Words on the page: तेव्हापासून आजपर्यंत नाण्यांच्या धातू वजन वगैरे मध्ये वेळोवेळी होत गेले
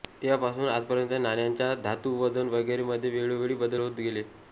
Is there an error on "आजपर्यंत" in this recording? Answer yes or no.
no